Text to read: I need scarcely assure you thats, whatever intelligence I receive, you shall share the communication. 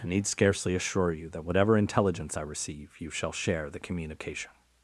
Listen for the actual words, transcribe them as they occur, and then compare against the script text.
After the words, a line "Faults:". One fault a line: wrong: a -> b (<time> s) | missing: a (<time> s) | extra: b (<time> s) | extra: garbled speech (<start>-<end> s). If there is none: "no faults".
I need scarcely assure you that, whatever intelligence I receive, you shall share the communication.
Faults:
wrong: thats -> that (1.3 s)